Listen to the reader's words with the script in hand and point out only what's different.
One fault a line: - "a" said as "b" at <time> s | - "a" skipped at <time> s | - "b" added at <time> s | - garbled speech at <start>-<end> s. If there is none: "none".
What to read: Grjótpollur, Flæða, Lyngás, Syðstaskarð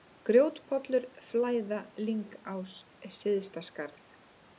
none